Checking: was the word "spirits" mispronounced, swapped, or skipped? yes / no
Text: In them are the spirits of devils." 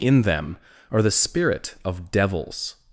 yes